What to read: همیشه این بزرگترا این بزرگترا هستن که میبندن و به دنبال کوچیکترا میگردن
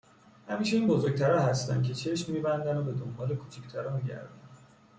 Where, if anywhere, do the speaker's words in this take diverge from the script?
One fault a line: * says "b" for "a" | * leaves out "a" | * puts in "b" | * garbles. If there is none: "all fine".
* leaves out "این بزرگترا"
* puts in "چشم"